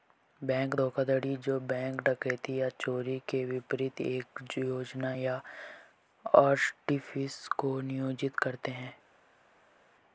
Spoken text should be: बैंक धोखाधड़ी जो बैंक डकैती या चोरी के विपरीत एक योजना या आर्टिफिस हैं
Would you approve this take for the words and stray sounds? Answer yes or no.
no